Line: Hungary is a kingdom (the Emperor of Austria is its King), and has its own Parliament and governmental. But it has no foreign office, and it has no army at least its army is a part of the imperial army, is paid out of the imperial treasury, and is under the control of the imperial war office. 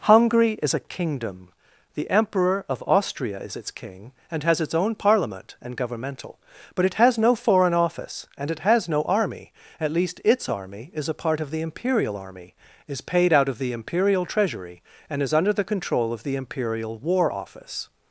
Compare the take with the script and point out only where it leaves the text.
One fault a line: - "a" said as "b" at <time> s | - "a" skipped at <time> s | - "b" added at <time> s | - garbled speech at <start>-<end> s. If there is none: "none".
none